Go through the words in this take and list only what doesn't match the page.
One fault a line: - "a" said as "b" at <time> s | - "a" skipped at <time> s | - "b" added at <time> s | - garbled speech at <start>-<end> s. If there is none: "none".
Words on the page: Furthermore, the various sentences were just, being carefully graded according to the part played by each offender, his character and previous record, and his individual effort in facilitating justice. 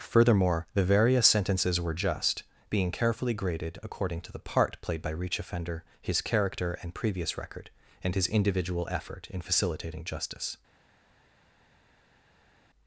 - "each" said as "reach" at 5.1 s